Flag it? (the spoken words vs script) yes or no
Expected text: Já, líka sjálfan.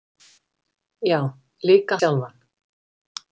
no